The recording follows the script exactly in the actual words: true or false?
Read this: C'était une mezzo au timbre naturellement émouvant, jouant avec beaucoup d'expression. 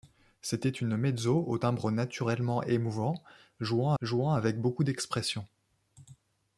false